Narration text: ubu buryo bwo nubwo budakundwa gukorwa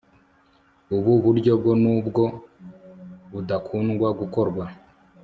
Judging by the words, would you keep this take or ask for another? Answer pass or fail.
pass